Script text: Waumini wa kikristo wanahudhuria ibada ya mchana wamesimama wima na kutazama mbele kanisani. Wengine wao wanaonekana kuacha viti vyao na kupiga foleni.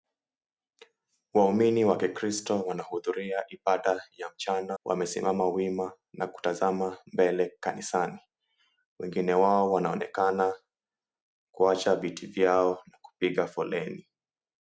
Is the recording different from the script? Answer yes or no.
no